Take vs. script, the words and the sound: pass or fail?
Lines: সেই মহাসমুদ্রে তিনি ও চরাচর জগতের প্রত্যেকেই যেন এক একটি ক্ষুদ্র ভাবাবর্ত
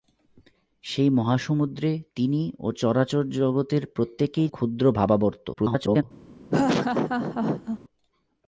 fail